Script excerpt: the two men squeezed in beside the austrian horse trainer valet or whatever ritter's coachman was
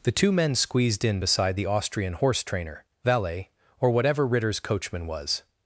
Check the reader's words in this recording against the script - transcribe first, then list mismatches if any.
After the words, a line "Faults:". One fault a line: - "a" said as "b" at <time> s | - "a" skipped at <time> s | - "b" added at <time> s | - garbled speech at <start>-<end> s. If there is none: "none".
the two men squeezed in beside the austrian horse trainer valet or whatever ritter's coachman was
Faults:
none